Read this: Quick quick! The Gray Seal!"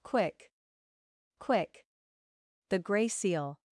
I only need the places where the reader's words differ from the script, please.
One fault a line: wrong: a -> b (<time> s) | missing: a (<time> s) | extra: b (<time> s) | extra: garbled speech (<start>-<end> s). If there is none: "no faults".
no faults